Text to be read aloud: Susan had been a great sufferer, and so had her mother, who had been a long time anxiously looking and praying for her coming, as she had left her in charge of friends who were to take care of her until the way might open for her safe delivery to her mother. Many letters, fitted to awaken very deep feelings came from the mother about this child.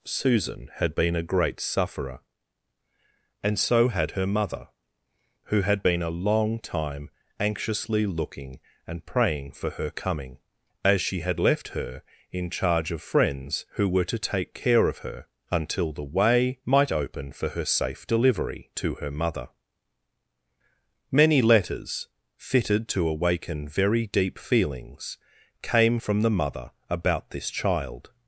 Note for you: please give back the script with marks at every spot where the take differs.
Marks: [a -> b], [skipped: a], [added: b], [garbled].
Susan had been a great sufferer, and so had her mother, who had been a long time anxiously looking and praying for her coming, as she had left her in charge of friends who were to take care of her until the way might open for her safe delivery to her mother. Many letters, fitted to awaken very deep feelings came from the mother about this child.